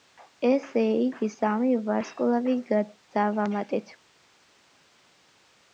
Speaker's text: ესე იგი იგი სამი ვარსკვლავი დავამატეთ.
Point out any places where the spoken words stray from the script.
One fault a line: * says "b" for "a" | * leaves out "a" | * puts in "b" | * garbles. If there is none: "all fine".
* leaves out "იგი"